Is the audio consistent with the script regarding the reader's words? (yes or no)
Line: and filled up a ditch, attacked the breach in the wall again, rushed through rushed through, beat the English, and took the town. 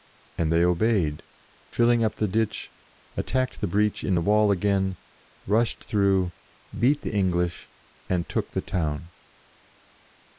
no